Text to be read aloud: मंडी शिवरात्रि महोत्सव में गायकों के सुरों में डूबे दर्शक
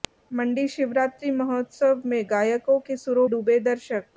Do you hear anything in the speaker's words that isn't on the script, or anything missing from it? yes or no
yes